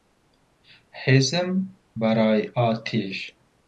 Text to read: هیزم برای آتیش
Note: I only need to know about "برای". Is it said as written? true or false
true